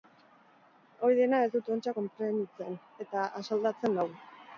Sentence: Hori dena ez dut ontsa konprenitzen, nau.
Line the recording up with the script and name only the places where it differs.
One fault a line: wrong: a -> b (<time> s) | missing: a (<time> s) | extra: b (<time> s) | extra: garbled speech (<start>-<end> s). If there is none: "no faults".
extra: eta asaldatzen (3.1 s)